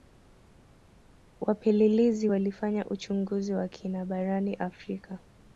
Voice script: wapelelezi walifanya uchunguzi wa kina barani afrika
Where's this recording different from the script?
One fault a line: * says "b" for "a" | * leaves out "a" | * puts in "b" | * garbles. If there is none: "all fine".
all fine